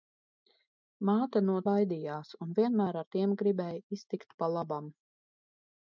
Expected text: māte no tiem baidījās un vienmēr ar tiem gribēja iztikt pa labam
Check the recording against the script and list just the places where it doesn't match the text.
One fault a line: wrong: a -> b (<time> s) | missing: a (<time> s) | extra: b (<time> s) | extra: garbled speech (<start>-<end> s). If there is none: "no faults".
missing: tiem (1.6 s)